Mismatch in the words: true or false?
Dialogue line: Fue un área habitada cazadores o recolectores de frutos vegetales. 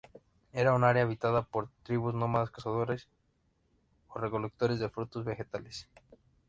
true